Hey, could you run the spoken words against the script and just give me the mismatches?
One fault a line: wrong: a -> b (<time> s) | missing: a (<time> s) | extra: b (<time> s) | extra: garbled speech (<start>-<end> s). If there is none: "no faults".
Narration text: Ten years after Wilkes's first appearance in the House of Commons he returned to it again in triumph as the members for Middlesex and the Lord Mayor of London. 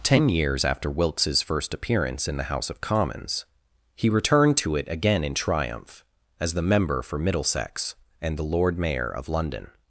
wrong: members -> member (6.6 s)